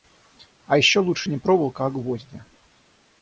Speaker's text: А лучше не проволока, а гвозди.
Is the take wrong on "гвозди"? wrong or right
right